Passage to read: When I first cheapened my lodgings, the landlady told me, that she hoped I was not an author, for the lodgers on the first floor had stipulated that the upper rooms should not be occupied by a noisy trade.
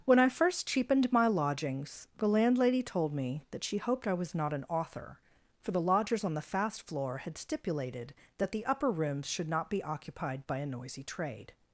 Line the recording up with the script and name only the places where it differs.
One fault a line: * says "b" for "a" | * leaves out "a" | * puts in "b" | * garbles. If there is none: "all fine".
* says "fast" for "first"